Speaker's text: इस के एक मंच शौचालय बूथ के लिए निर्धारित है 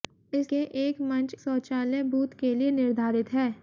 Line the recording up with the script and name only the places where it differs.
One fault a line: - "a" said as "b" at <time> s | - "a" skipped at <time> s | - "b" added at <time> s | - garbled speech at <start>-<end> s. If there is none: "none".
none